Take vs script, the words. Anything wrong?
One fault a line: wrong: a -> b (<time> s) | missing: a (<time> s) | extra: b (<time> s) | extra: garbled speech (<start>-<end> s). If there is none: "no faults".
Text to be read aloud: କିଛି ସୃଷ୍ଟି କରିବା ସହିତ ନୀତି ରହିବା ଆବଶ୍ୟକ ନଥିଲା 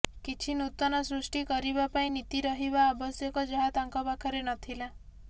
extra: ନୂତନ (0.6 s)
wrong: ସହିତ -> ପାଇଁ (1.9 s)
extra: ଯାହା ତାଙ୍କ ପାଖରେ (3.5 s)